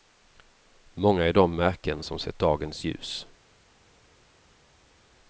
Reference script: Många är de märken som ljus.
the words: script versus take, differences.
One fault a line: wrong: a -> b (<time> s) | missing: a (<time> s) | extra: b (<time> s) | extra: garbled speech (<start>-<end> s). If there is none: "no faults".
extra: sett dagens (2.2 s)